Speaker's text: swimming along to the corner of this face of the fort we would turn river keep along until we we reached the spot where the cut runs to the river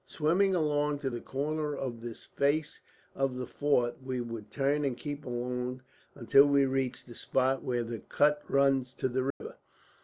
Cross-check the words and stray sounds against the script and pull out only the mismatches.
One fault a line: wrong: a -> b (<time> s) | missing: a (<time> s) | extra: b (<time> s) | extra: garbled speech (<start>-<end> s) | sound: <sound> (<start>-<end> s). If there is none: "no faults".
wrong: river -> and (4.8 s)
missing: we (6.6 s)
sound: dropout (9.3-9.4 s)